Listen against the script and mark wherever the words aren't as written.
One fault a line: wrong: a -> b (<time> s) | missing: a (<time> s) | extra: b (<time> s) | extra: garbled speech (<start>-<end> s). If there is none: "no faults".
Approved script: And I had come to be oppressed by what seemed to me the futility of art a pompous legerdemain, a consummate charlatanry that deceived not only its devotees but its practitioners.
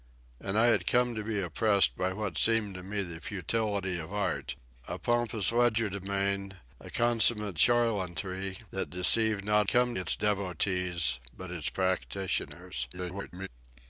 wrong: only -> come (9.7 s)
extra: garbled speech (12.9-13.5 s)